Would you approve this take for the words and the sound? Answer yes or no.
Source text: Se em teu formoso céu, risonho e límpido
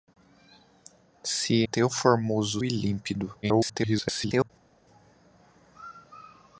no